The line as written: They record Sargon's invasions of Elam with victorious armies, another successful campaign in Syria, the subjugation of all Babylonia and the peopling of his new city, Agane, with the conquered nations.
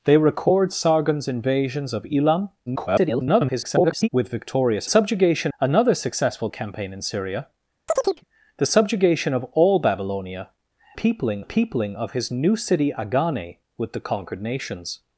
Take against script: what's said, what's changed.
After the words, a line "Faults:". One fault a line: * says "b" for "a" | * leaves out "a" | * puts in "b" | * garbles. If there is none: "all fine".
They record Sargon's invasions of Elam [garbled] with victorious subjugation, another successful campaign in Syria, the subjugation of all Babylonia peopling the peopling of his new city, Agane, with the conquered nations.
Faults:
* garbles
* says "subjugation" for "armies"
* says "peopling" for "and"